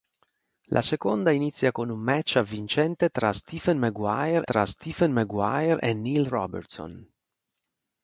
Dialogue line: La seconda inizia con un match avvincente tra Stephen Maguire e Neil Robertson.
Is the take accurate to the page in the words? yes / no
no